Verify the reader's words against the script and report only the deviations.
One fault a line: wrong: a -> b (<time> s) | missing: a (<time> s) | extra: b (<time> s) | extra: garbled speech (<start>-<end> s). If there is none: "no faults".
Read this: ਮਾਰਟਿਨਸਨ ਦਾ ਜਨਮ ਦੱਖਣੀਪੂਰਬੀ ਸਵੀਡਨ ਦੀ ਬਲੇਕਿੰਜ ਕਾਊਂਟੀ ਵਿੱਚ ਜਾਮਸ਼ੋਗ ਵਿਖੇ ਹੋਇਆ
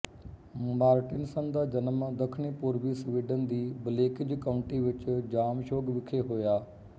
no faults